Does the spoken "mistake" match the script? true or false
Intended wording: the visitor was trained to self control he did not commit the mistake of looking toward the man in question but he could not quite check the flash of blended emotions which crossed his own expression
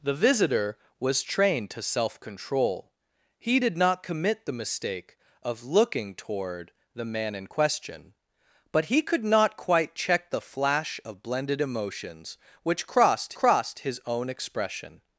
true